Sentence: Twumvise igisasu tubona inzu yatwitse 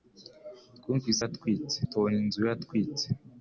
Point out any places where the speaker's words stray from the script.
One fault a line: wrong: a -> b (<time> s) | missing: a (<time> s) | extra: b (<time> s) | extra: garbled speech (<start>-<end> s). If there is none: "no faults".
wrong: igisasu -> yatwitse (1.2 s)